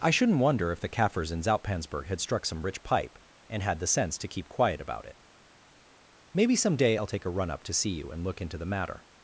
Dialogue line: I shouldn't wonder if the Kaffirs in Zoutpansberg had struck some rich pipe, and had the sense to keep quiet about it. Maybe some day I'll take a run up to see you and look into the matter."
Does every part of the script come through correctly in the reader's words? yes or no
yes